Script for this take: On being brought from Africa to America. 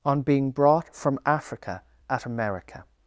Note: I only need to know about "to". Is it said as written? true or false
false